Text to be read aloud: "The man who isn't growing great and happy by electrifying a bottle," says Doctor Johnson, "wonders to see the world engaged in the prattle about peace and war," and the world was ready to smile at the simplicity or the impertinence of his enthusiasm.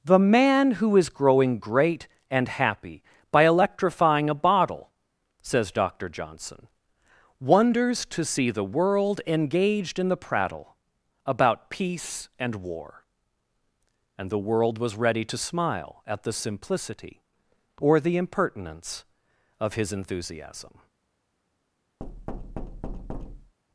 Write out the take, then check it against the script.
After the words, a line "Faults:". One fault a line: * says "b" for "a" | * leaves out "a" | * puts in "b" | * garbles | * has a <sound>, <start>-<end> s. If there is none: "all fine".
"The man who is growing great and happy by electrifying a bottle," says Doctor Johnson, "wonders to see the world engaged in the prattle about peace and war," and the world was ready to smile at the simplicity or the impertinence of his enthusiasm.
Faults:
* says "is" for "isn't"
* has a thud, 22.0-23.5 s